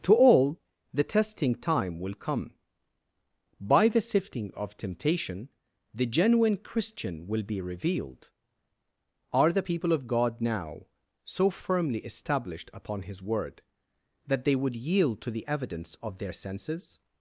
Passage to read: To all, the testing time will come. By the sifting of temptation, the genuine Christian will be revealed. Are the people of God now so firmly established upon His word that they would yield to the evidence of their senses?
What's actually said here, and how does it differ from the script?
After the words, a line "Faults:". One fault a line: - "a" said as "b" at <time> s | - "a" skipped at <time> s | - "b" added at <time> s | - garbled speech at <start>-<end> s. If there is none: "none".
To all, the testing time will come. By the sifting of temptation, the genuine Christian will be revealed. Are the people of God now so firmly established upon His word that they would yield to the evidence of their senses?
Faults:
none